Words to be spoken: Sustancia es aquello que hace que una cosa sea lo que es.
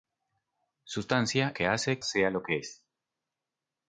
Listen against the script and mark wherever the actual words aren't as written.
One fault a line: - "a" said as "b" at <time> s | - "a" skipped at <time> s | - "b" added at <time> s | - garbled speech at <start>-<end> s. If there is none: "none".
- "es aquello" skipped at 1.5 s
- "que una cosa" skipped at 2.0 s